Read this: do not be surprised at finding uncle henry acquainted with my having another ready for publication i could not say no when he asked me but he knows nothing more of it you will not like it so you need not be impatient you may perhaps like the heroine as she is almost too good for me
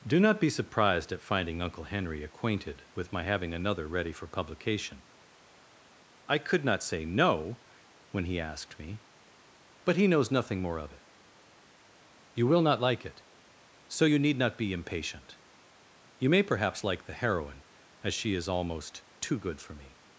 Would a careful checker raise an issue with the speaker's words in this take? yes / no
no